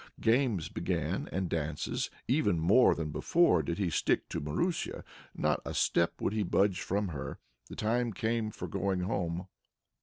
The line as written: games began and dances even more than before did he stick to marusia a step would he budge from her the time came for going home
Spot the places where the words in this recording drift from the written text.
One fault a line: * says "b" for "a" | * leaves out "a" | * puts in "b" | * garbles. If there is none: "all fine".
* puts in "not"